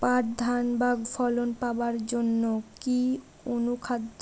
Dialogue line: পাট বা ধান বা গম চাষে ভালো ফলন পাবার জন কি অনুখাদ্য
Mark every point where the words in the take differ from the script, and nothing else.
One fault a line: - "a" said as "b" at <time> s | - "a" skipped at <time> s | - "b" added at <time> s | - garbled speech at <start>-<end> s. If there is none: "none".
- "বা" skipped at 0.2 s
- "গম চাষে ভালো" skipped at 0.9 s